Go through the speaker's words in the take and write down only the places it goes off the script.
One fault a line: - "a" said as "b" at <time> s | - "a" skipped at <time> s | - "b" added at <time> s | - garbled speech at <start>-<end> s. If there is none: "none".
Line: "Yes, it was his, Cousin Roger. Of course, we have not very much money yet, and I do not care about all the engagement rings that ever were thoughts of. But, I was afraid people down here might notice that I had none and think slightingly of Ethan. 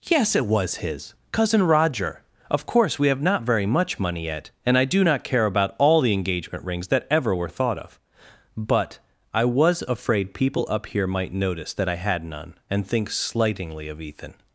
- "thoughts" said as "thought" at 7.5 s
- "down" said as "up" at 10.7 s